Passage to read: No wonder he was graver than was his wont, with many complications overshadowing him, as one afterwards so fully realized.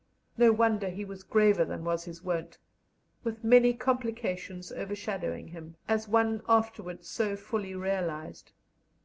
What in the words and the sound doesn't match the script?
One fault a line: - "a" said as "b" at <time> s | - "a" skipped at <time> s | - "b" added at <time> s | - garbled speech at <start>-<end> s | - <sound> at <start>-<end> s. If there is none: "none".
none